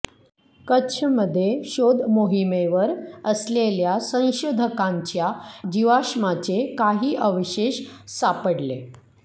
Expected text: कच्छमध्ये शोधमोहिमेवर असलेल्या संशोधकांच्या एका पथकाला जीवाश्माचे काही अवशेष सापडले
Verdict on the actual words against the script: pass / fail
fail